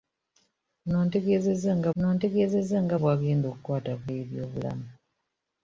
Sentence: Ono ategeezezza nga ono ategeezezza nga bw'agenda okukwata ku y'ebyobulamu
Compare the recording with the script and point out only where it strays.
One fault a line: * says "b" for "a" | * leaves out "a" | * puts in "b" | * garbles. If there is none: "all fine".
all fine